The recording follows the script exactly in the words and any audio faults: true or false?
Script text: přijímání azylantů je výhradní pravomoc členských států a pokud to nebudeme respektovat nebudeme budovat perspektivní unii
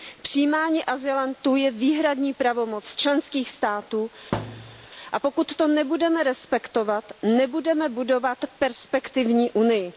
false